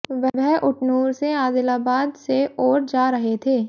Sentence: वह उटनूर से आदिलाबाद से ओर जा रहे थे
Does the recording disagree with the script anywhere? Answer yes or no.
no